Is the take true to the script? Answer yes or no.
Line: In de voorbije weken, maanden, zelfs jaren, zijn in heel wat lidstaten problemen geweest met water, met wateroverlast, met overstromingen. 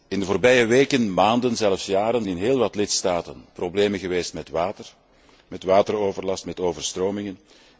no